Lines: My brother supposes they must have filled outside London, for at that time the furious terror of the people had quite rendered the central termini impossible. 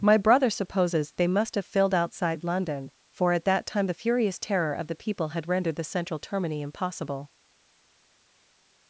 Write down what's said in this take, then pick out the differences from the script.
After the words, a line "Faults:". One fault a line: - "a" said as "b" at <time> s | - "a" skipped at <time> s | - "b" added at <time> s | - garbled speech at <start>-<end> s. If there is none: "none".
My brother supposes they must have filled outside London, for at that time the furious terror of the people had rendered the central termini impossible.
Faults:
- "quite" skipped at 5.5 s